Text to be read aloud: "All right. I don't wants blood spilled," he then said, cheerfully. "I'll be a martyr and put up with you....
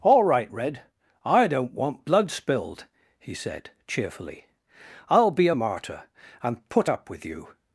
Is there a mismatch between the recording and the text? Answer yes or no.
yes